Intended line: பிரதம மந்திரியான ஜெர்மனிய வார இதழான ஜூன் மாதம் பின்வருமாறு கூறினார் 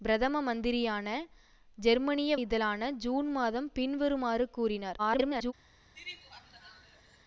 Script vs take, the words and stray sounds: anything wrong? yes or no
yes